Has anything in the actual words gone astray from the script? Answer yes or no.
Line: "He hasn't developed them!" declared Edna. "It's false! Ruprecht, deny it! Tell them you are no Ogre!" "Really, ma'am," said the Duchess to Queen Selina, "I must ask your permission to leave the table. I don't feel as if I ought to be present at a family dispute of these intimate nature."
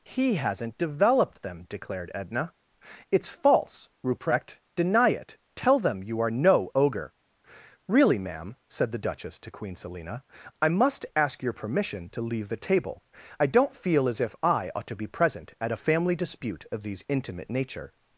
no